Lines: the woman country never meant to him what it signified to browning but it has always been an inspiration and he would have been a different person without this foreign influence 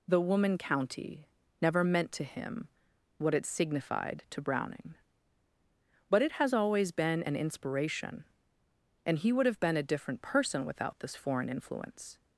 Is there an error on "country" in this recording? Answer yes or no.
yes